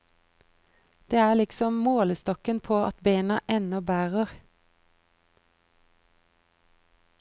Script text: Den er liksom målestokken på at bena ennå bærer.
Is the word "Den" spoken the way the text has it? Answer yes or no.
no